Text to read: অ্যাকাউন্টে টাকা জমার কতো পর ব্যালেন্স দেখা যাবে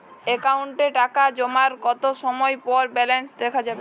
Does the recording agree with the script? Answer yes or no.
no